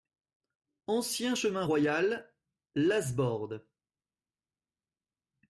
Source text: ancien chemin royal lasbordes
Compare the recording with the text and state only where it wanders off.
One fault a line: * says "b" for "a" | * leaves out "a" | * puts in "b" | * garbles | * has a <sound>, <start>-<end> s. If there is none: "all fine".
all fine